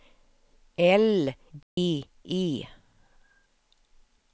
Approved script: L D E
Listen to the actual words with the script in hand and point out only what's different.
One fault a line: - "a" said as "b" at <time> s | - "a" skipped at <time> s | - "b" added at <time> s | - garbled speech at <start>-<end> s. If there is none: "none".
none